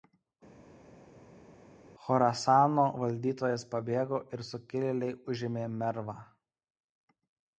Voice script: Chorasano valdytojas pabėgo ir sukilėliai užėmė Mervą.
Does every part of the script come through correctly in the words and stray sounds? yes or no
yes